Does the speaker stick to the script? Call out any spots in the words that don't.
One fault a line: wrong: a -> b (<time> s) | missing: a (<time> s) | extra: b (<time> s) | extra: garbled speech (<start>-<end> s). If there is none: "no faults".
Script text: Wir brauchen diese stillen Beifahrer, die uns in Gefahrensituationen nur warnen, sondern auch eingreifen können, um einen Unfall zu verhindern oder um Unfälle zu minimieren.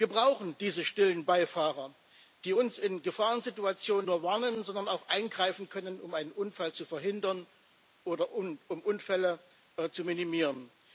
no faults